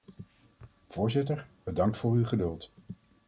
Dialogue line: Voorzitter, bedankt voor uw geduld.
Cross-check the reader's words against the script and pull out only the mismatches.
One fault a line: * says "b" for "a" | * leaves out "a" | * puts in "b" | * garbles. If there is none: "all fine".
all fine